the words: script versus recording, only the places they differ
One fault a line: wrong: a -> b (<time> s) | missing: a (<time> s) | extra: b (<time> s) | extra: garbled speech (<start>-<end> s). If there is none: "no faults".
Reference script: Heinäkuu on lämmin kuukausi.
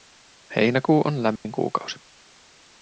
no faults